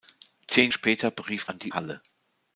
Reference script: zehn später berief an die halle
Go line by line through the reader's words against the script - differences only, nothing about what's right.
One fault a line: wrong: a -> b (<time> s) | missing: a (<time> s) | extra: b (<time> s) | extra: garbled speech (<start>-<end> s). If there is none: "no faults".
no faults